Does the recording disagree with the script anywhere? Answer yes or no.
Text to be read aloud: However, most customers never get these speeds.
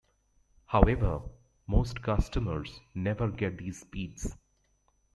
no